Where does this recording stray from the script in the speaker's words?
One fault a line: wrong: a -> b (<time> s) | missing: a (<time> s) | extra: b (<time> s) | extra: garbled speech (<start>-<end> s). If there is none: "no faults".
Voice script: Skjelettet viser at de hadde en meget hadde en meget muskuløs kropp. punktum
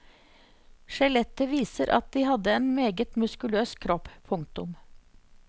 missing: hadde en meget (3.2 s)